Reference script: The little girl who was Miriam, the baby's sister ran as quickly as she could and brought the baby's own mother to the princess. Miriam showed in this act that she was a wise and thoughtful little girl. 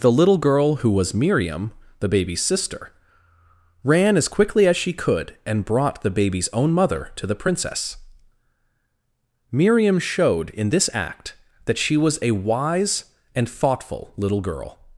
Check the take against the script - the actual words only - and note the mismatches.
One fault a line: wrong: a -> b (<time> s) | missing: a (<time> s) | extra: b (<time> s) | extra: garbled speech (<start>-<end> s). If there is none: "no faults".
no faults